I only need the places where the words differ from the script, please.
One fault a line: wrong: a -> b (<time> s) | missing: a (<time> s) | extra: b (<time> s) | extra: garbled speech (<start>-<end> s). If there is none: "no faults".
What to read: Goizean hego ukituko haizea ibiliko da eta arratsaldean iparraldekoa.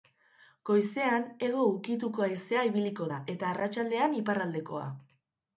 no faults